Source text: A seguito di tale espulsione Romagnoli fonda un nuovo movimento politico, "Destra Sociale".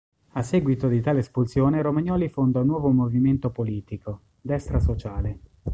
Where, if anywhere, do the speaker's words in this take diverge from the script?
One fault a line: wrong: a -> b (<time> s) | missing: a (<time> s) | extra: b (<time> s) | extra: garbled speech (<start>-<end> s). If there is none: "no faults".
no faults